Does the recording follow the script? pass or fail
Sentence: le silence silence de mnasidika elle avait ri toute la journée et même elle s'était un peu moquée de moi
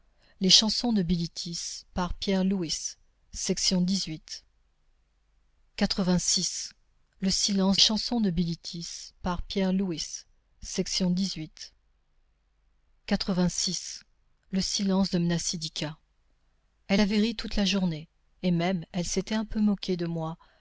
pass